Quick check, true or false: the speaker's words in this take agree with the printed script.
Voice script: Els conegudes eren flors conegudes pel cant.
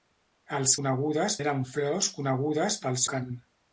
true